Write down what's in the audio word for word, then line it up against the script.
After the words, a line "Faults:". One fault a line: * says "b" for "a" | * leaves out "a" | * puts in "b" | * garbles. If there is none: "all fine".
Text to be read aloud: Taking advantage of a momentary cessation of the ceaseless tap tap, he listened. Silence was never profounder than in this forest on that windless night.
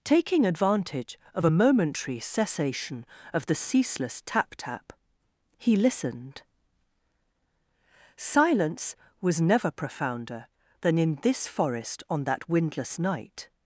Taking advantage of a momentary cessation of the ceaseless tap tap, he listened. Silence was never profounder than in this forest on that windless night.
Faults:
all fine